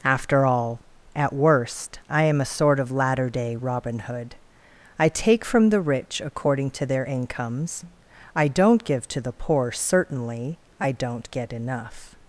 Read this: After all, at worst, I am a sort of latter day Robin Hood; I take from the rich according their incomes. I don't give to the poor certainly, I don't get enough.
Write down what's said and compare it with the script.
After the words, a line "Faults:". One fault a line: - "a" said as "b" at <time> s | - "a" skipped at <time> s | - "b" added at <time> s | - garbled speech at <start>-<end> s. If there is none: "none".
After all, at worst, I am a sort of latter day Robin Hood; I take from the rich according to their incomes. I don't give to the poor certainly, I don't get enough.
Faults:
- "to" added at 6.7 s